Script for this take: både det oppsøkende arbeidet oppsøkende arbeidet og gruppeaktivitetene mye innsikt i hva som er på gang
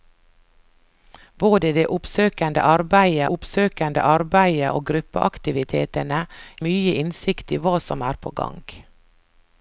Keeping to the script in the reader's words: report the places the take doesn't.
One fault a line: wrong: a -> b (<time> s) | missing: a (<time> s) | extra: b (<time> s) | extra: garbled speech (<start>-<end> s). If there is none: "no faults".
no faults